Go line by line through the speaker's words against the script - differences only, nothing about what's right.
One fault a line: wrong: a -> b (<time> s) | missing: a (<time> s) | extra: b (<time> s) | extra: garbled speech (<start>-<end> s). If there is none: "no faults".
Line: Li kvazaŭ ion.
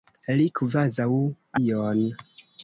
no faults